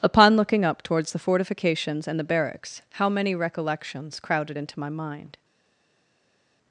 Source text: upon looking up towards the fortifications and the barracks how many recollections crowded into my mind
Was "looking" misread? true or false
false